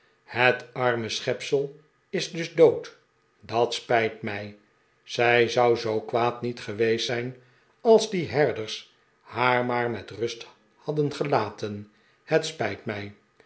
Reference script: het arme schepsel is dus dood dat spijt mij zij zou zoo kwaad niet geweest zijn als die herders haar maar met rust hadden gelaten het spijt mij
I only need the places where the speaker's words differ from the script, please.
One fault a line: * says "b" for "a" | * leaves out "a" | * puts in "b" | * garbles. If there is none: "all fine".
all fine